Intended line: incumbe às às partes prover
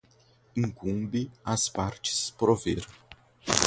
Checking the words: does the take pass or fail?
fail